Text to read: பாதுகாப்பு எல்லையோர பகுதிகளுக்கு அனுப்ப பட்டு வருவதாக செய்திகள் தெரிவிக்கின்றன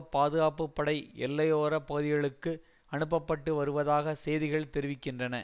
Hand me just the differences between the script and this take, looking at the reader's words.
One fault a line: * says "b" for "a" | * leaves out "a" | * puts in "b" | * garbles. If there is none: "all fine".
* puts in "படை"